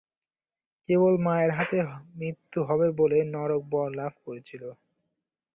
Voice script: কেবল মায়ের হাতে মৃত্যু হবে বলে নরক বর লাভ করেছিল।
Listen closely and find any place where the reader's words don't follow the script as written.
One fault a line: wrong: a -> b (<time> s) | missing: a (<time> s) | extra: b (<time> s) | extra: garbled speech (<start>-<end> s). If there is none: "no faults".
no faults